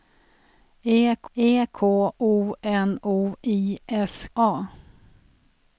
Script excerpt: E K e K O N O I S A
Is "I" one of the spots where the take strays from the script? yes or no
no